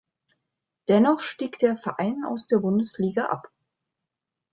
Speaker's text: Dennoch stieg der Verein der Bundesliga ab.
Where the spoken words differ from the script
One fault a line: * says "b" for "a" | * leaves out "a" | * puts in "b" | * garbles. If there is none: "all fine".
* puts in "aus"